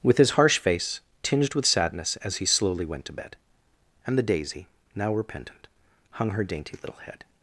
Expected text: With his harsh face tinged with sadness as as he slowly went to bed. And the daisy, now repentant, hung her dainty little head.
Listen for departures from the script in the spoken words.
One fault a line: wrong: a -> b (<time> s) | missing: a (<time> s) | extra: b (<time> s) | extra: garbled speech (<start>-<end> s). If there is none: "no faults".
missing: as (2.4 s)